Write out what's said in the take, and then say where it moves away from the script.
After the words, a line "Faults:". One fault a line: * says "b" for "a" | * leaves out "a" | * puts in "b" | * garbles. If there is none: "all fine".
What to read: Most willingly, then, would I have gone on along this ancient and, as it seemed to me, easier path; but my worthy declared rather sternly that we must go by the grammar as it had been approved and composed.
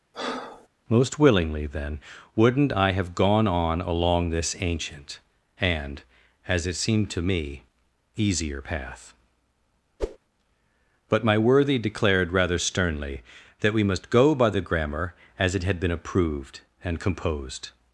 Most willingly, then, wouldn't I have gone on along this ancient and, as it seemed to me, easier path; but my worthy declared rather sternly that we must go by the grammar as it had been approved and composed.
Faults:
* says "wouldn't" for "would"